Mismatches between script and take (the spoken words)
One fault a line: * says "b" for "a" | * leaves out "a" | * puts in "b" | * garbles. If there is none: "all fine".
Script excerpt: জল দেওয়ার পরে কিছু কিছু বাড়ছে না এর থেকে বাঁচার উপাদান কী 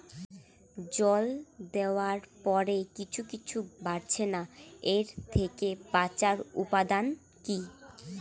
all fine